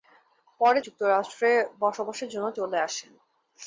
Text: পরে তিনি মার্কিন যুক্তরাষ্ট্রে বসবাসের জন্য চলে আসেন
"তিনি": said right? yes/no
no